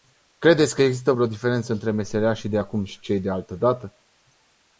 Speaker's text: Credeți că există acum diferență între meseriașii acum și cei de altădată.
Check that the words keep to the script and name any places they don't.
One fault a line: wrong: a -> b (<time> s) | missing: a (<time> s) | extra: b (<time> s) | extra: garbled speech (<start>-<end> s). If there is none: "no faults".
wrong: acum -> vreo (1.1 s)
extra: de (2.5 s)